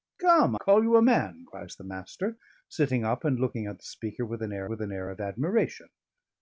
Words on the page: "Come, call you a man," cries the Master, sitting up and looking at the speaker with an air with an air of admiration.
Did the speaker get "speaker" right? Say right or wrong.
right